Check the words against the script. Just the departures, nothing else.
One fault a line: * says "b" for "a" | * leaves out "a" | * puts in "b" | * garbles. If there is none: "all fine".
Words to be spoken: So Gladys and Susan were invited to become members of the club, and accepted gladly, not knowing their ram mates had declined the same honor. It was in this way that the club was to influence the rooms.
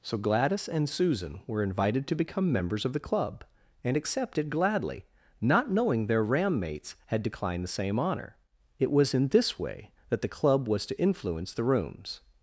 all fine